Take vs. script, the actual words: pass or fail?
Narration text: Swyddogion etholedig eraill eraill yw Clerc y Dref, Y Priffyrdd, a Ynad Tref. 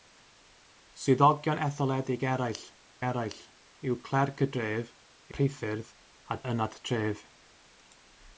pass